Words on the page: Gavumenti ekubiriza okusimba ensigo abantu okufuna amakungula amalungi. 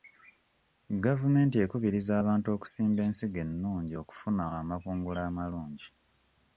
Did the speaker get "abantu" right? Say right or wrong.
wrong